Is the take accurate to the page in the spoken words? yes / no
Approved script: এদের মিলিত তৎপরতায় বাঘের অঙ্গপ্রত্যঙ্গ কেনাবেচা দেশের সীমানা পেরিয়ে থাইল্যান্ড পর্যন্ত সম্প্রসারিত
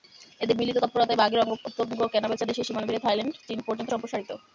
no